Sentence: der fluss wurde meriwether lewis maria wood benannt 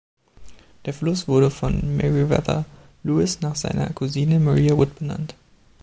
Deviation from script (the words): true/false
true